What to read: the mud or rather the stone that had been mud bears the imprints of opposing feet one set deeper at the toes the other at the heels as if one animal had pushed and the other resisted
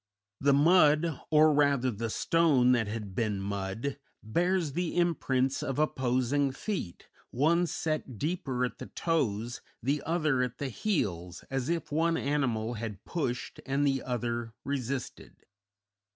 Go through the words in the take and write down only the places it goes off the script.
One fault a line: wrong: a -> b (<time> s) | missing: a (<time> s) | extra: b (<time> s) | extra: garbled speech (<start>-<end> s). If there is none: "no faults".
no faults